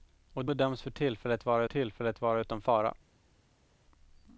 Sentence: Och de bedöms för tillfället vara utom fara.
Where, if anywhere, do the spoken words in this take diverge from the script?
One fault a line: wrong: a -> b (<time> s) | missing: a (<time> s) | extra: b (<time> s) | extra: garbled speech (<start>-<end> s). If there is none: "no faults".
missing: de (0.5 s)
extra: tillfället vara (1.6 s)